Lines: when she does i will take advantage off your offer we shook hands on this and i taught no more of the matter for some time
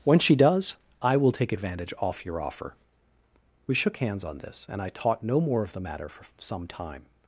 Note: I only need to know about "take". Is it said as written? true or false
true